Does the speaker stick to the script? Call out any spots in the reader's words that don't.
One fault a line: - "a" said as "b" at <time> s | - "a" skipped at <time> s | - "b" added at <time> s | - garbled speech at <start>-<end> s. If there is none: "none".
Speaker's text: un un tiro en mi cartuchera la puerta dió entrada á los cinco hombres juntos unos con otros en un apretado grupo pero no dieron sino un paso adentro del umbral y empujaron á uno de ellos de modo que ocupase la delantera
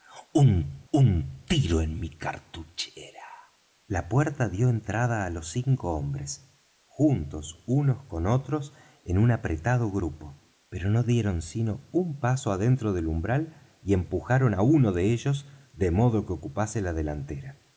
none